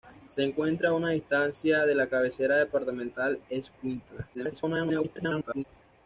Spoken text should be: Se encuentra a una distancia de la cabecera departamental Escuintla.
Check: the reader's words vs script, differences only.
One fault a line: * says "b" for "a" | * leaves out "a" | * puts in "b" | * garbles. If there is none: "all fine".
* garbles